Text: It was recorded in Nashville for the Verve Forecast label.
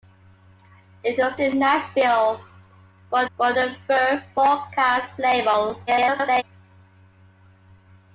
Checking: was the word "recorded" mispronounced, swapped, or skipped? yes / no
yes